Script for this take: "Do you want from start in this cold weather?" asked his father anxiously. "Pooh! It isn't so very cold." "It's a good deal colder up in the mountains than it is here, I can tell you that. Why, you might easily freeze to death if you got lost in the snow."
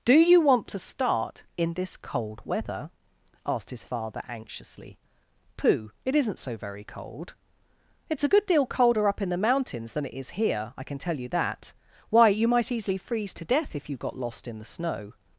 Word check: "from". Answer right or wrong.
wrong